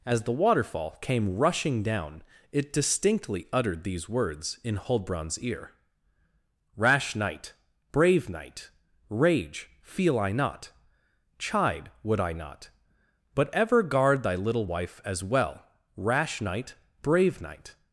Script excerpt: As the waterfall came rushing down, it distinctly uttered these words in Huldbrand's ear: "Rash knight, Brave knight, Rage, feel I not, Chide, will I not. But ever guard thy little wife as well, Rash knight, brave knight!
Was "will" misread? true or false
true